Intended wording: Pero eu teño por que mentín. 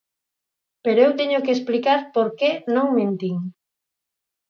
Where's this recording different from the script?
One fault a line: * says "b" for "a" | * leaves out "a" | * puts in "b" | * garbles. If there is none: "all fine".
* puts in "que explicar"
* puts in "non"